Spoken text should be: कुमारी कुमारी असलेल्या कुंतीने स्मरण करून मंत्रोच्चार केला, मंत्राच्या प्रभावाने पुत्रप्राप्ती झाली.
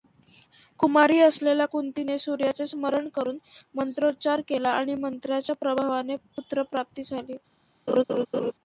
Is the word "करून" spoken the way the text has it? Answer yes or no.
yes